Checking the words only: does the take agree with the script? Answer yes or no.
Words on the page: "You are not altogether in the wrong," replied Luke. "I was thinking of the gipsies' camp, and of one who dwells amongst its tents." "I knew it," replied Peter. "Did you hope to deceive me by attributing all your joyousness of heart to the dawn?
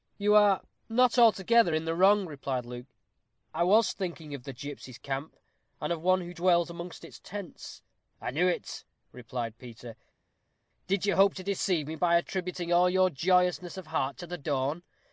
yes